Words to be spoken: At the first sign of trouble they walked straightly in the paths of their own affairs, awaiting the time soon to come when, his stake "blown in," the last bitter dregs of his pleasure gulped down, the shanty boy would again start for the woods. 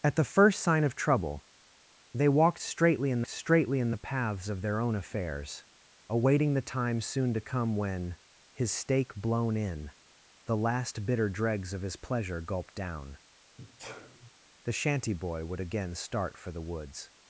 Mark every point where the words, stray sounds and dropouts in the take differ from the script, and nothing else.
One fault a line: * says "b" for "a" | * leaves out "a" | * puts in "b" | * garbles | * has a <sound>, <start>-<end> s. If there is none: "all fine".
* puts in "straightly in"
* has a sneeze, 13.6-14.3 s